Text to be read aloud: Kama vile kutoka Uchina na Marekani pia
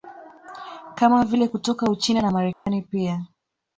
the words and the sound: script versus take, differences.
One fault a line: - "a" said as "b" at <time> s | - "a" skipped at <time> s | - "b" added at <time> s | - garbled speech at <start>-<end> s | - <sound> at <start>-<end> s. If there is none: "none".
- dropout at 2.5-2.7 s